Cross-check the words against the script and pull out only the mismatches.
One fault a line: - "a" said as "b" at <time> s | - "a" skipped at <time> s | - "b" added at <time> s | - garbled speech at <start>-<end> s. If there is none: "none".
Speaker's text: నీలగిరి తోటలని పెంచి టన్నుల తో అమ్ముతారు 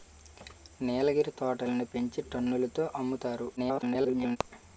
- garbled speech at 3.6-4.4 s